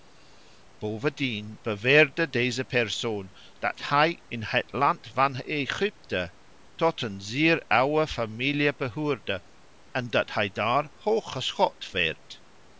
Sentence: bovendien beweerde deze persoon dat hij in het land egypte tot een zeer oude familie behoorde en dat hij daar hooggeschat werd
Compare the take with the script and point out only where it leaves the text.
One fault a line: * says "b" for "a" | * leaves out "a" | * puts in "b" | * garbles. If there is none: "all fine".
* puts in "van"